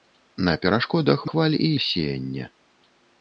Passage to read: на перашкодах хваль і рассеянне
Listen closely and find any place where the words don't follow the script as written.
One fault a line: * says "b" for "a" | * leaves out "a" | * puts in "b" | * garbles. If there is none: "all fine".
all fine